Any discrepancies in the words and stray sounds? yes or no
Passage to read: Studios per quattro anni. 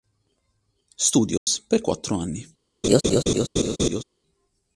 yes